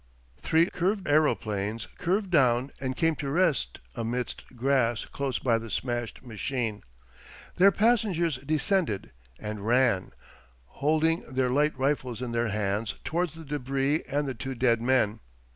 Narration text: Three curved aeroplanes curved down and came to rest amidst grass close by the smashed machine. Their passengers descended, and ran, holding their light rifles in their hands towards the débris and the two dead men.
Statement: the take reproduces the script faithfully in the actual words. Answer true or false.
true